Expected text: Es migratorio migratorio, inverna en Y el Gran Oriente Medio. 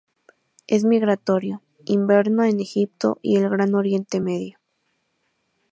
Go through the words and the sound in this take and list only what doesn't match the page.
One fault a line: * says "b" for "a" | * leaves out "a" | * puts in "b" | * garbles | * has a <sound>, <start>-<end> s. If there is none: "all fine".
* leaves out "migratorio"
* puts in "Egipto"